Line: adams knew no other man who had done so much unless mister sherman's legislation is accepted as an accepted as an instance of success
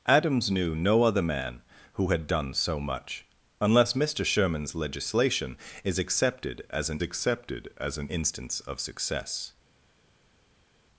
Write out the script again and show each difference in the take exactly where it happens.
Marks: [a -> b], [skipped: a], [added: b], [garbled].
adams knew no other man who had done so much unless mister sherman's legislation is accepted as an accepted as an instance of success